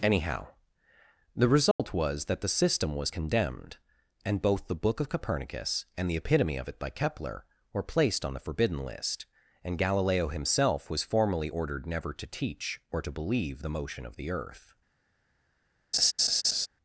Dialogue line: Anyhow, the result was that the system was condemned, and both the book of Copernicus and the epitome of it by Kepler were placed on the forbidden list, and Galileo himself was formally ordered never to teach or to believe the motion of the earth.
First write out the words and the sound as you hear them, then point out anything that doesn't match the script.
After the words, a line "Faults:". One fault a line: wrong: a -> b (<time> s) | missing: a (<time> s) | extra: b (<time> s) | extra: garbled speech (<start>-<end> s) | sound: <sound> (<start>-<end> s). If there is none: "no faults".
Anyhow, the result was that the system was condemned, and both the book of Copernicus and the epitome of it by Kepler were placed on the forbidden list, and Galileo himself was formally ordered never to teach or to believe the motion of the earth.
Faults:
sound: dropout (1.7-1.8 s)
sound: laugh (15.9-16.7 s)